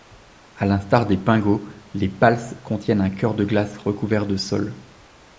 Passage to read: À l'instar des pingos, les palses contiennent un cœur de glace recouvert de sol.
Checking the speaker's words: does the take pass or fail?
pass